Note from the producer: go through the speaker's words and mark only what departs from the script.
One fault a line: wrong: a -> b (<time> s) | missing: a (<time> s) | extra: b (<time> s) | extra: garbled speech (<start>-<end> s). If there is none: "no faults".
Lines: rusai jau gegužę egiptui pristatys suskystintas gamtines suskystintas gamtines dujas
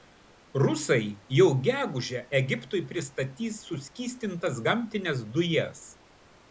missing: suskystintas gamtines (5.3 s)